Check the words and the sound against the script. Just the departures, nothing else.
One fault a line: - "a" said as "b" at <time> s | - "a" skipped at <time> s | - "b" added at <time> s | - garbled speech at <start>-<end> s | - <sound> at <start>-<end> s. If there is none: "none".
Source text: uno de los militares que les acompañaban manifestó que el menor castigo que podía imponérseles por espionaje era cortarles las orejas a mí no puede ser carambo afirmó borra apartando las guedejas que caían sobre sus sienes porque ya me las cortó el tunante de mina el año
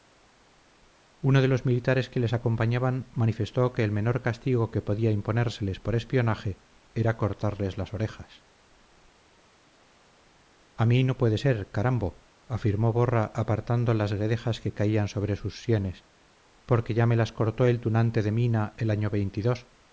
none